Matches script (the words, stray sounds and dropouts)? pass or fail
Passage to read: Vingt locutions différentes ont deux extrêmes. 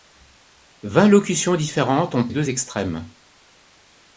pass